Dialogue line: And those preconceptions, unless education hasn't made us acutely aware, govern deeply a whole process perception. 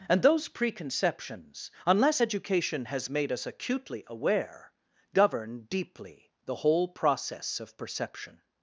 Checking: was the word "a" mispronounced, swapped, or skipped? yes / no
yes